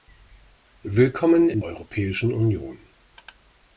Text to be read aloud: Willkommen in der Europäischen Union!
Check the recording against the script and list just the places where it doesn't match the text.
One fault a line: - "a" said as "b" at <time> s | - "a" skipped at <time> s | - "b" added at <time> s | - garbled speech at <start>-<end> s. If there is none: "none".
- "der" skipped at 1.6 s